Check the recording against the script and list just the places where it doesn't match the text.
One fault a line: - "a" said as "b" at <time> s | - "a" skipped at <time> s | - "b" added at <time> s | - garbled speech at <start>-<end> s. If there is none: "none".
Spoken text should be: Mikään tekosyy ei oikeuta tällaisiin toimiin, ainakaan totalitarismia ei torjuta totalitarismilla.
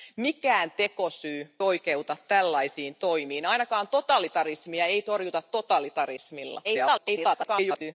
- "ei" skipped at 1.6 s
- garbled speech at 6.6-7.9 s